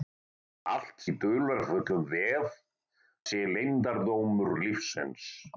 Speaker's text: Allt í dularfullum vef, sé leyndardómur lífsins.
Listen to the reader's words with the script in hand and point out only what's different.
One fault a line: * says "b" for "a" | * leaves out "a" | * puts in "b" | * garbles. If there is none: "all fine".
all fine